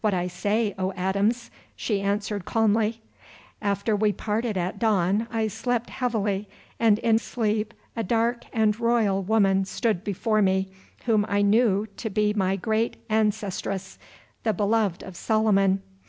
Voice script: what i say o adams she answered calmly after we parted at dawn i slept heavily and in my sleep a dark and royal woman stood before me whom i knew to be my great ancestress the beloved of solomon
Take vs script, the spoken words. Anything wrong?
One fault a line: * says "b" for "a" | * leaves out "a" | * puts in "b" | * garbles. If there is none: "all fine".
* leaves out "my"